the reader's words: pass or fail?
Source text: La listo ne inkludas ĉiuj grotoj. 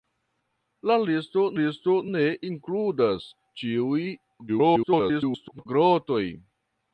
fail